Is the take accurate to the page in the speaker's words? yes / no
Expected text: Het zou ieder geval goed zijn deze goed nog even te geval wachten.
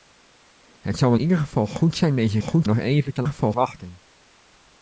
yes